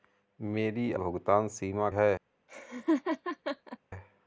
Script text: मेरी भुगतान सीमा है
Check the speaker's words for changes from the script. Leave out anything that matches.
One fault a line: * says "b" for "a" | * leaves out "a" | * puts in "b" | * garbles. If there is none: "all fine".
all fine